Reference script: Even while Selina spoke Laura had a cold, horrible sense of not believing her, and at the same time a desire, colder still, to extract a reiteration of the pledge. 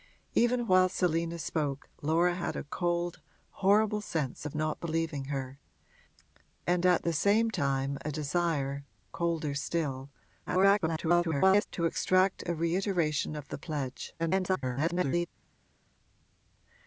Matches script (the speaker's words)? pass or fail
fail